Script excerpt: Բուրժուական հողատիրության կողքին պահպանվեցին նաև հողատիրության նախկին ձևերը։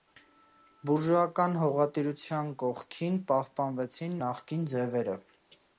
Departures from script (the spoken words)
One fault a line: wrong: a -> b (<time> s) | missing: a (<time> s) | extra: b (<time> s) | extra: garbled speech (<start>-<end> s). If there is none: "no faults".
missing: նաև հողատիրության (4.2 s)